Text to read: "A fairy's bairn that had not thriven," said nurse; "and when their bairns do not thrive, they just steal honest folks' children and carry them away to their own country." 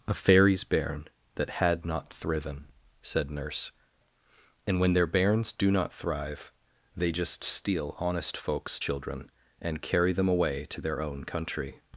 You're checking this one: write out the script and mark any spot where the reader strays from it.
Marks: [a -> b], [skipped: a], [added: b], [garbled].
"A fairy's bairn that had not thriven," said nurse; "and when their bairns do not thrive, they just steal honest folks' children and carry them away to their own country."